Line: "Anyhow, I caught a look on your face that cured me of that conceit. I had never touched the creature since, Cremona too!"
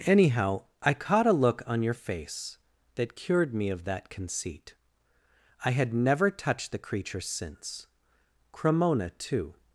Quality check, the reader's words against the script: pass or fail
pass